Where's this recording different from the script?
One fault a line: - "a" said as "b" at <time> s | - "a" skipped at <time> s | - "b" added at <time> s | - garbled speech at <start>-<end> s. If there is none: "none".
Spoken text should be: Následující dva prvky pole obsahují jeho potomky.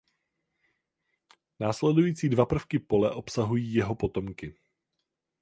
none